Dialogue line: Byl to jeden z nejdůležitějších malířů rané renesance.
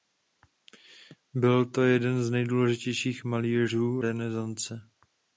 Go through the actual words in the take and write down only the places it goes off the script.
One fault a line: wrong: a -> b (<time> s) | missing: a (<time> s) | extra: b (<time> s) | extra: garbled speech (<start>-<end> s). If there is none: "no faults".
missing: rané (4.0 s)